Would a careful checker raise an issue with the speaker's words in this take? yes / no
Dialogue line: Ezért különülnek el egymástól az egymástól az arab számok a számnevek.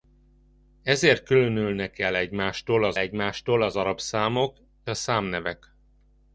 no